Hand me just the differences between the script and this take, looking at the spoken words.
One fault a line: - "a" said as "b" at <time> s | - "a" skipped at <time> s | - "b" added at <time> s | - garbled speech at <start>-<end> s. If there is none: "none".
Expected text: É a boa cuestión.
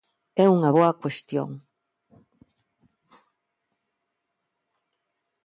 - "a" said as "unha" at 0.6 s